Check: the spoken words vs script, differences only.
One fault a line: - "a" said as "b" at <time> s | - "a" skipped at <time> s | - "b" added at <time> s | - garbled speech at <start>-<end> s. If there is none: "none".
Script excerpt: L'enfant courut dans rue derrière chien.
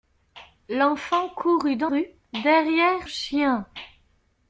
none